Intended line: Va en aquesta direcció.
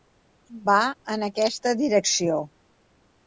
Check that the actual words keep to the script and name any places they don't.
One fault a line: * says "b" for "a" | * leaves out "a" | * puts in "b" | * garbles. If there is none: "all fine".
all fine